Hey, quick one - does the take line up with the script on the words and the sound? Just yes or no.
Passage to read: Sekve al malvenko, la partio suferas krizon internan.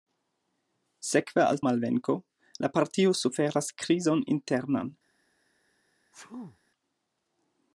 no